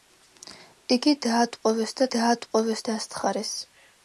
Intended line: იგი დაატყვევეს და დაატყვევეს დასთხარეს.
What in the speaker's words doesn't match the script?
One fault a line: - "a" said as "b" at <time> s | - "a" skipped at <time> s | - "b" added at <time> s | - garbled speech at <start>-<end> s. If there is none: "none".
none